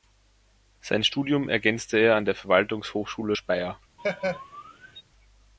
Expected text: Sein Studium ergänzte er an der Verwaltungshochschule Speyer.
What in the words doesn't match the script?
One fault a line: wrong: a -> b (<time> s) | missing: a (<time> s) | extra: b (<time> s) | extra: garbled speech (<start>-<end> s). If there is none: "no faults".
no faults